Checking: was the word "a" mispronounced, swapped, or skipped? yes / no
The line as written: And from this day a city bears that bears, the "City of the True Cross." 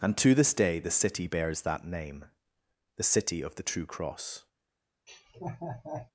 yes